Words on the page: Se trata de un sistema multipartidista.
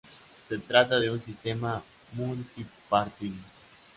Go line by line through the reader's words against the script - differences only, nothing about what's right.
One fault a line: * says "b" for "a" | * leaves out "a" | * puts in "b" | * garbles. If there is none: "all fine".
all fine